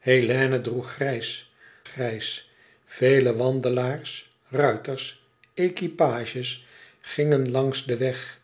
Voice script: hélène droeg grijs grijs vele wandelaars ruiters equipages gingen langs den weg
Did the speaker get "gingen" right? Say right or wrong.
right